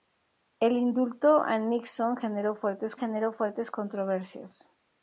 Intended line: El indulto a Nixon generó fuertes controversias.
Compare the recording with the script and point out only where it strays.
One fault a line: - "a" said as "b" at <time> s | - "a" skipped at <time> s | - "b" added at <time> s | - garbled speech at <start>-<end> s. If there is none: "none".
- "generó fuertes" added at 2.9 s